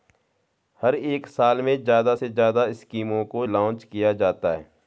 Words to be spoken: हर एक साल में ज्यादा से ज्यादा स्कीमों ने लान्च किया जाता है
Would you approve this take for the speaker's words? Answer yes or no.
no